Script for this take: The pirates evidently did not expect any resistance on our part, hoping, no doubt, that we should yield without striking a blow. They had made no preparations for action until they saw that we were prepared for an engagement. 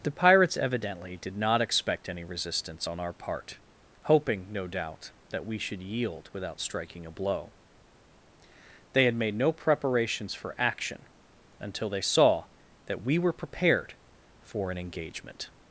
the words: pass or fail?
pass